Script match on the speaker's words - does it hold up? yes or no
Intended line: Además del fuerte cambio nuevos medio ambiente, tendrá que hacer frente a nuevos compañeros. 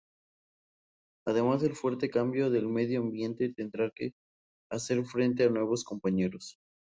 no